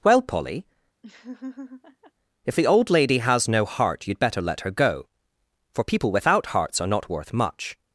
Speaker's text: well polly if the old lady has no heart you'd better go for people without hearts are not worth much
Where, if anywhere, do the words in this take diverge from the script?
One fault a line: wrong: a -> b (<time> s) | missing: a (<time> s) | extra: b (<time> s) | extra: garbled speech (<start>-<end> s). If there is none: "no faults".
extra: let her (4.4 s)